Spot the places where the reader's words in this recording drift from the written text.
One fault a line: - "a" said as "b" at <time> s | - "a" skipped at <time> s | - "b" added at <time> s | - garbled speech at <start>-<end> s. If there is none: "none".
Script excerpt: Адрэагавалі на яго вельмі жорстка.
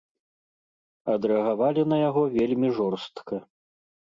none